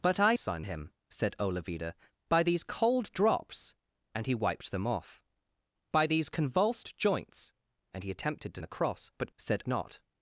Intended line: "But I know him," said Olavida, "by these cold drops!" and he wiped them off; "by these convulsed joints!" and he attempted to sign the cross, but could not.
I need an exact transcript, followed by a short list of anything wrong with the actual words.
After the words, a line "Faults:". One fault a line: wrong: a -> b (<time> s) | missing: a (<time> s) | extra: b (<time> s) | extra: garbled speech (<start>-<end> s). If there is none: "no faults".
"But I sign him," said Olavida, "by these cold drops!" and he wiped them off; "by these convulsed joints!" and he attempted to the cross, but said not.
Faults:
wrong: know -> sign (0.3 s)
missing: sign (8.6 s)
wrong: could -> said (9.4 s)